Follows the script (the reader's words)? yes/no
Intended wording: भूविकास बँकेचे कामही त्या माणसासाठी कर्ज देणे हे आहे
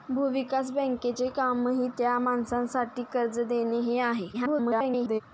no